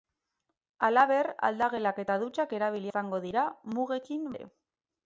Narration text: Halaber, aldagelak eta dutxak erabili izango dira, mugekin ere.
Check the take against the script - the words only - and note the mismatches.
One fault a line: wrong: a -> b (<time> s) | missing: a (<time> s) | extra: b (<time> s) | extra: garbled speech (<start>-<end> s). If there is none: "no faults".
no faults